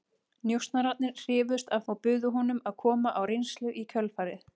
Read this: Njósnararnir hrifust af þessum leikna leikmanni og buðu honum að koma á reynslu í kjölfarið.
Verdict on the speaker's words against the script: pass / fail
fail